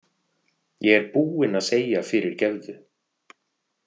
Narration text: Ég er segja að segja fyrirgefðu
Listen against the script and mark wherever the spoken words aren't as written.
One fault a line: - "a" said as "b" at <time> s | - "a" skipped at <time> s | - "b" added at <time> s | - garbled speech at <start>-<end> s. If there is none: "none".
- "segja" said as "búinn" at 1.2 s